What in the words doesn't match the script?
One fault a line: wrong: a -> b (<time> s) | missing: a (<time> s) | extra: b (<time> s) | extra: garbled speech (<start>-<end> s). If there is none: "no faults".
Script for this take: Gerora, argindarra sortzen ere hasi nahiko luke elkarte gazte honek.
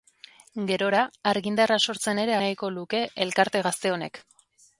missing: hasi (2.4 s)